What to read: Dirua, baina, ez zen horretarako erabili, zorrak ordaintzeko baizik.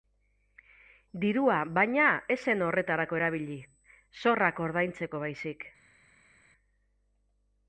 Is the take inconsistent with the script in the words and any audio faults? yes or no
no